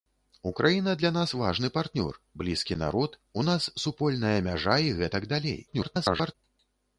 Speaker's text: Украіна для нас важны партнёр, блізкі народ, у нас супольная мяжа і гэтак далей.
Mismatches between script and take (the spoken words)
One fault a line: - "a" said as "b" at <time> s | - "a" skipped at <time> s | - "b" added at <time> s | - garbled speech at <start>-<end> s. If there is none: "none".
- garbled speech at 5.7-6.4 s